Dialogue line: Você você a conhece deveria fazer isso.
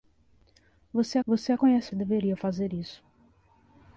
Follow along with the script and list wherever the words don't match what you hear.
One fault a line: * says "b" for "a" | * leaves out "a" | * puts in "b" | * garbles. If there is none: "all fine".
all fine